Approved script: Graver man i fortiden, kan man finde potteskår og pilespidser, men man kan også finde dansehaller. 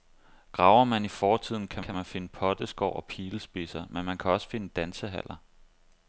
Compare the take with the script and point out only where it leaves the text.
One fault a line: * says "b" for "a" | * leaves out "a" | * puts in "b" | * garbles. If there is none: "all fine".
* puts in "kan"